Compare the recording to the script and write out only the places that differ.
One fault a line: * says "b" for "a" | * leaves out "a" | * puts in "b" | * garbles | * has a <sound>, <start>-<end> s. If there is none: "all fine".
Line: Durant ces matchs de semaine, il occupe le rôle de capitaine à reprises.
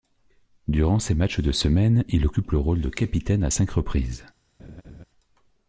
* puts in "cinq"
* has a laugh, 4.6-5.0 s